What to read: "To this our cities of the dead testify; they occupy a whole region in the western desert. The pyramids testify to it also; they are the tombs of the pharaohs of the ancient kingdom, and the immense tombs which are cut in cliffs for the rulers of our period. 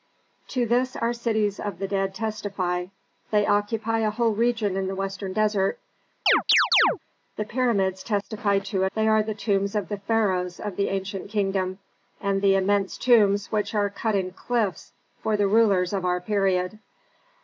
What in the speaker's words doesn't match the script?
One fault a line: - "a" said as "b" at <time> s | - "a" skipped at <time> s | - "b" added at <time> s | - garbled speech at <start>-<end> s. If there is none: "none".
- "also" skipped at 8.9 s